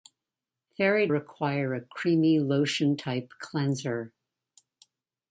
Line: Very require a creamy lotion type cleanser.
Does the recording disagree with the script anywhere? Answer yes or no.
no